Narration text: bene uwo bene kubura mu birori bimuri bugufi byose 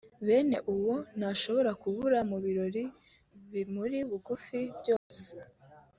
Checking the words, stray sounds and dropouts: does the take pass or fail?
fail